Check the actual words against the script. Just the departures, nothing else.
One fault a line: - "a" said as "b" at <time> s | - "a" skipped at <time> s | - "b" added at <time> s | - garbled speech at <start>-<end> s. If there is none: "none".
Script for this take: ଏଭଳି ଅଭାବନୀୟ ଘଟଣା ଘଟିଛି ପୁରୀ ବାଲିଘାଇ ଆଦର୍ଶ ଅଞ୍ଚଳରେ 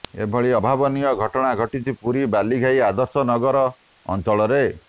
- "ନଗର" added at 3.3 s